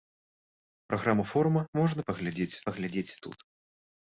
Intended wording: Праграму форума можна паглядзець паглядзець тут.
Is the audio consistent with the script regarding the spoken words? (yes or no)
yes